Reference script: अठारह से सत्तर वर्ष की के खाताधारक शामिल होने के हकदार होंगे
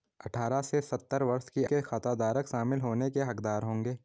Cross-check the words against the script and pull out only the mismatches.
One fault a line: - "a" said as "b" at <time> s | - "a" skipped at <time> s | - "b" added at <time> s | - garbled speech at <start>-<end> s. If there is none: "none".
none